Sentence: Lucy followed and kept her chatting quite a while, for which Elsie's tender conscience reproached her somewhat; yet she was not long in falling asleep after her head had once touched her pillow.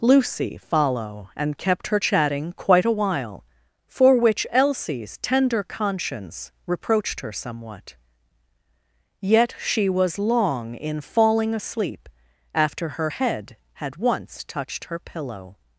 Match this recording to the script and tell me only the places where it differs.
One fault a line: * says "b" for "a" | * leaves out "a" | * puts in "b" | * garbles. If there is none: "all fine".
* says "follow" for "followed"
* leaves out "not"